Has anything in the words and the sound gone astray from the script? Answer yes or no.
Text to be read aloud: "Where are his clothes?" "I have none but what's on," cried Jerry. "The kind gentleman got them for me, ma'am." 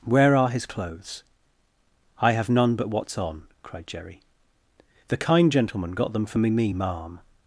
yes